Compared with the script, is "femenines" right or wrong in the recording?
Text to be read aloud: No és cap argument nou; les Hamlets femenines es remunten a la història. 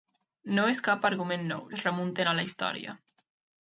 wrong